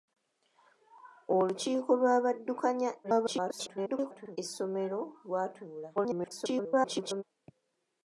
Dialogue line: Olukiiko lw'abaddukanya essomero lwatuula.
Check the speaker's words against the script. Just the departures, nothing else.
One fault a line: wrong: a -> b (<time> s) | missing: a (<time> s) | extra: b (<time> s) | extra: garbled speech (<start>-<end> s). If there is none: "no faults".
extra: garbled speech (3.0-4.4 s)
extra: garbled speech (6.0-7.2 s)